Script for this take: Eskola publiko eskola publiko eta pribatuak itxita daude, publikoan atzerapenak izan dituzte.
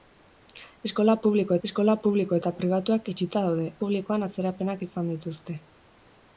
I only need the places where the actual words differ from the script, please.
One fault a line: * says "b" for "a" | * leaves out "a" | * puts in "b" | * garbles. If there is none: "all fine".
all fine